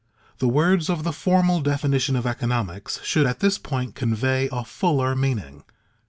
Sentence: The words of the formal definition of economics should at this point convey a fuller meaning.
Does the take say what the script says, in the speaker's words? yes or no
yes